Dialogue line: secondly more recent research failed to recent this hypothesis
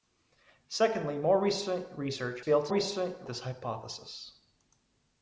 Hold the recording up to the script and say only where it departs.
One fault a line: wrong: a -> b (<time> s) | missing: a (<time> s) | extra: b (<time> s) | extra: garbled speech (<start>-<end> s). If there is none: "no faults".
no faults